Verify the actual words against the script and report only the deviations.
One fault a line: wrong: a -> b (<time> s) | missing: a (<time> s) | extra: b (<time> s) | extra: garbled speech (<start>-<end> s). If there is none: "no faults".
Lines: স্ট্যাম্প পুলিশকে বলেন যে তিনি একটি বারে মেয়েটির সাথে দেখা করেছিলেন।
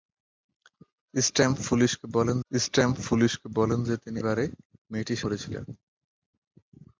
extra: স্ট্যাম্প পুলিশকে বলেন (2.5 s)
missing: একটি (4.2 s)
missing: সাথে দেখা (5.2 s)